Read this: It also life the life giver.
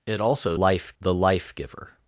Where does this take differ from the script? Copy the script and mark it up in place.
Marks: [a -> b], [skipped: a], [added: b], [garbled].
It also life the life giver.